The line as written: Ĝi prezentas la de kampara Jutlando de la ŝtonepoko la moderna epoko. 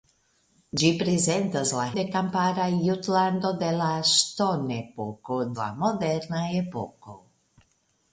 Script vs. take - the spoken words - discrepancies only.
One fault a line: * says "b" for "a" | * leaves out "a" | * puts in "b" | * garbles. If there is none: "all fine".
all fine